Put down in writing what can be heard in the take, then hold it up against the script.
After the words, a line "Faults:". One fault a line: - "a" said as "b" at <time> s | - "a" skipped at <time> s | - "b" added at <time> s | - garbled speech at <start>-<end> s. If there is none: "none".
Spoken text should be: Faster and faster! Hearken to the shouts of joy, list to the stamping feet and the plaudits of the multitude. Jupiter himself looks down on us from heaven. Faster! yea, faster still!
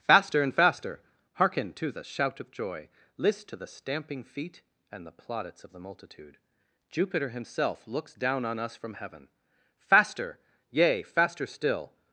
Faster and faster! Hearken to the shout of joy, list to the stamping feet and the plaudits of the multitude. Jupiter himself looks down on us from heaven. Faster! yea, faster still!
Faults:
- "shouts" said as "shout" at 2.0 s